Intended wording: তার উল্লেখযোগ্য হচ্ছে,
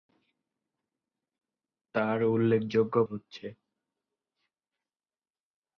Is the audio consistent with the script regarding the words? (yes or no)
yes